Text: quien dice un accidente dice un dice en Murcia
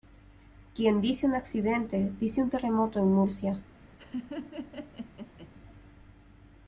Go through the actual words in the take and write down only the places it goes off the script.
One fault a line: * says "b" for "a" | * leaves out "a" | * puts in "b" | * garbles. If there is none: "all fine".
* says "terremoto" for "dice"